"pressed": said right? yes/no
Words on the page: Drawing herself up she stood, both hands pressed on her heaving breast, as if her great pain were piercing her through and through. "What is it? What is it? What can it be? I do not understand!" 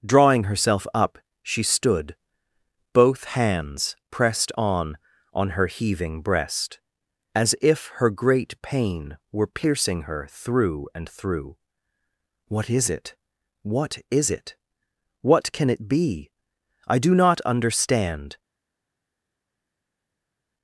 yes